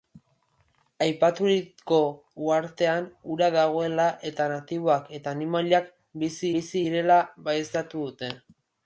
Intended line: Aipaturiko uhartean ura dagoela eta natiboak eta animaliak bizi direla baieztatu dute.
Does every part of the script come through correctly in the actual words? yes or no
no